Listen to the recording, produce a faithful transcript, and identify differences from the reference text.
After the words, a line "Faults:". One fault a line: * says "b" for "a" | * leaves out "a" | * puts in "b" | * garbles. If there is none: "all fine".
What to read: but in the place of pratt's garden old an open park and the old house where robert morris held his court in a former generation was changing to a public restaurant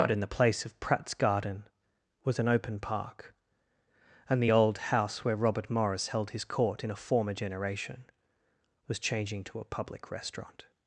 but in the place of pratt's garden was an open park and the old house where robert morris held his court in a former generation was changing to a public restaurant
Faults:
* says "was" for "old"